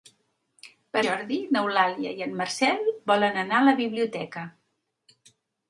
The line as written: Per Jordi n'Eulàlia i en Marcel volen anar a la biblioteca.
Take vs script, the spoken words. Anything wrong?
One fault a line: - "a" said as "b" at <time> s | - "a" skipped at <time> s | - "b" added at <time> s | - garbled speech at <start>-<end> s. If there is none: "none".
none